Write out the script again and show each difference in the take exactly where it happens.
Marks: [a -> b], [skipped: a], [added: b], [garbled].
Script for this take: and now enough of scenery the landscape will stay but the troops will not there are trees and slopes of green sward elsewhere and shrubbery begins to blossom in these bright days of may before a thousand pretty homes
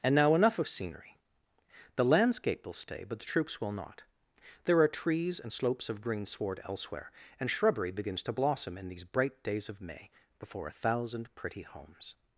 and now enough of scenery the landscape will stay but the troops will not there are trees and slopes of green sward elsewhere and shrubbery begins to blossom in these bright days of may before a thousand pretty homes